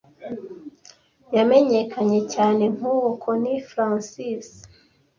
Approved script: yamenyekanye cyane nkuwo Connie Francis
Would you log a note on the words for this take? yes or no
no